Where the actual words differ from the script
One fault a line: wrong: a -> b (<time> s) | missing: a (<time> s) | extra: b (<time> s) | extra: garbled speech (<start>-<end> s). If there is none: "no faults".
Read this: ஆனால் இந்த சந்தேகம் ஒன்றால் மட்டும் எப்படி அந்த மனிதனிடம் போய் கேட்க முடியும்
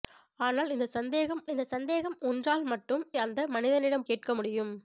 extra: இந்த சந்தேகம் (1.5 s)
missing: எப்படி (3.0 s)
missing: போய் (4.1 s)